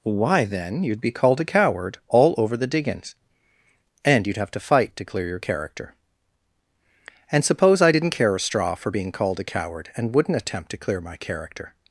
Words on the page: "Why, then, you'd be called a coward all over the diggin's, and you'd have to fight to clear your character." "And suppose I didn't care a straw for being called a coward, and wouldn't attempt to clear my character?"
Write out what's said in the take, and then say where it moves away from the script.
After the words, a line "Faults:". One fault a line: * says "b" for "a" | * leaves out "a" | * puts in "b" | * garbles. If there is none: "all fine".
"Why, then, you'd be called a coward all over the diggin's, and you'd have to fight to clear your character." "And suppose I didn't care a straw for being called a coward, and wouldn't attempt to clear my character?"
Faults:
all fine